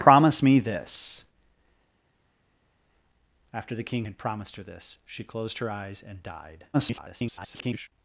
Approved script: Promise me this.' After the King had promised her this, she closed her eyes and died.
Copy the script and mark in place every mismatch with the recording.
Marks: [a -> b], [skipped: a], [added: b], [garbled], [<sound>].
Promise me this.' After the King had promised her this, she closed her eyes and died. [garbled]